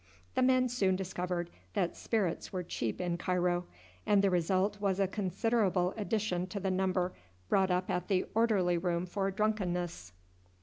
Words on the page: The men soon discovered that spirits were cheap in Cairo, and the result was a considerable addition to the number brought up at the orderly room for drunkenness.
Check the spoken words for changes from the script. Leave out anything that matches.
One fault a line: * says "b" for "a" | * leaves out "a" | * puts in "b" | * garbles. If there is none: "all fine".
all fine